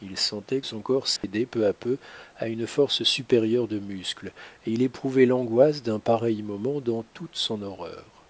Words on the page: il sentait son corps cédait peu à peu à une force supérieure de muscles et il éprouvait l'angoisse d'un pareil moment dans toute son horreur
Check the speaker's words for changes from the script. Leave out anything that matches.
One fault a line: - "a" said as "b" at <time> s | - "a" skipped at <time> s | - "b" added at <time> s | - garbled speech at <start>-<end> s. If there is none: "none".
none